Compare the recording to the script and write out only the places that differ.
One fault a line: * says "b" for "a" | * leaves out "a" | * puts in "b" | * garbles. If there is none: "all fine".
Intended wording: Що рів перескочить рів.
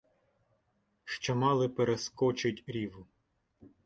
* says "мали" for "рів"